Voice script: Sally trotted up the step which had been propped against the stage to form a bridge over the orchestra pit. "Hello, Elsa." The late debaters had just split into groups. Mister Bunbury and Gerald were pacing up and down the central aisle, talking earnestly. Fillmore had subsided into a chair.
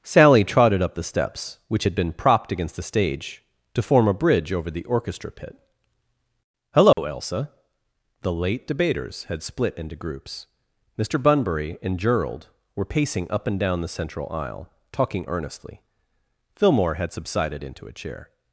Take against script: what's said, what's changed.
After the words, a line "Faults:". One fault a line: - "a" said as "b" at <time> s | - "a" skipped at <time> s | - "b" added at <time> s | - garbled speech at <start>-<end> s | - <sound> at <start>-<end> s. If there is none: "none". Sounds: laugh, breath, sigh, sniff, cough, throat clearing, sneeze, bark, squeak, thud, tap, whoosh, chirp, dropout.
Sally trotted up the steps which had been propped against the stage to form a bridge over the orchestra pit. "Hello, Elsa." The late debaters had split into groups. Mister Bunbury and Gerald were pacing up and down the central aisle, talking earnestly. Fillmore had subsided into a chair.
Faults:
- "step" said as "steps" at 1.0 s
- dropout at 6.9-7.0 s
- "just" skipped at 9.4 s